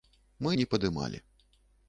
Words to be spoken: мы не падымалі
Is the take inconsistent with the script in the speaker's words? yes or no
no